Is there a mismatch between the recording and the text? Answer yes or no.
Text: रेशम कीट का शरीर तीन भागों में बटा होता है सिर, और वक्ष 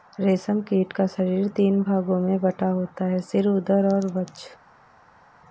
yes